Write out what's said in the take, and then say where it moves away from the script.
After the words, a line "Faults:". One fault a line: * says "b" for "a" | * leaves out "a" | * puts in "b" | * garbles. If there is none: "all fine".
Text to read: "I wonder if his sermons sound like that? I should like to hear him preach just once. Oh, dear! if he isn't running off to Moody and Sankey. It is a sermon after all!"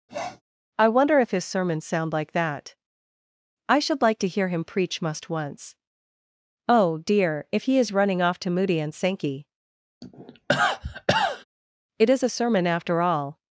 "I wonder if his sermons sound like that? I should like to hear him preach must once. Oh, dear! if he is running off to Moody and Sankey. It is a sermon after all!"
Faults:
* says "must" for "just"
* says "is" for "isn't"